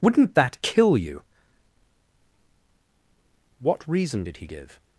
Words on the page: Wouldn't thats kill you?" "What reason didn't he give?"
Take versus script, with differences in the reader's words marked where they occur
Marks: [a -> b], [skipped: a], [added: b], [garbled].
Wouldn't [thats -> that] kill you?" "What reason [didn't -> did] he give?"